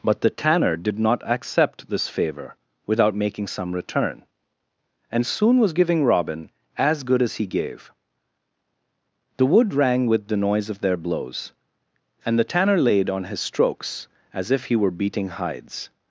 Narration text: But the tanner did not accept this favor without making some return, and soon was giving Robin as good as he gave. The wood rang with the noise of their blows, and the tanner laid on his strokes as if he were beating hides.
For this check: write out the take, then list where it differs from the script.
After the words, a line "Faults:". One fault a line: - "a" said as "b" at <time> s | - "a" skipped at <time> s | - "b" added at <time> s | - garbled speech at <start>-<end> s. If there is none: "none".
But the tanner did not accept this favor without making some return, and soon was giving Robin as good as he gave. The wood rang with the noise of their blows, and the tanner laid on his strokes as if he were beating hides.
Faults:
none